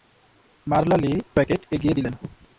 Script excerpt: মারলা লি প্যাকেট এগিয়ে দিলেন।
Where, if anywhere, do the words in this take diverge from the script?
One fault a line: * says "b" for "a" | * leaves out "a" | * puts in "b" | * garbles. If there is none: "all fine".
all fine